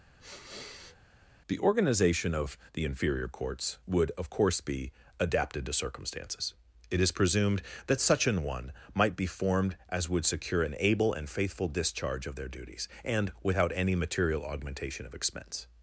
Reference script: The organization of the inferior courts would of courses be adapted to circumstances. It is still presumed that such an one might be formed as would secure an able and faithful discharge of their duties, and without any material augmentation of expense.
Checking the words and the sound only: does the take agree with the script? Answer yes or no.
no